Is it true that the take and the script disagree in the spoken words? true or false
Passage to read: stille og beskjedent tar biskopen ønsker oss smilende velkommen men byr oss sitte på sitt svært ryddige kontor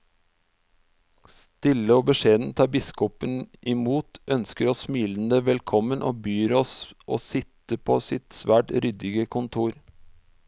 true